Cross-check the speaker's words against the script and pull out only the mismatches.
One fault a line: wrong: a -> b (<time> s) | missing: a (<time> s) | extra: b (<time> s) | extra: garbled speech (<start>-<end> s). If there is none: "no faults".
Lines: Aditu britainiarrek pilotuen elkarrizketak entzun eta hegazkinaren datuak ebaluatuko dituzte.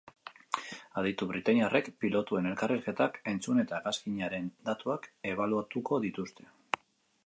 no faults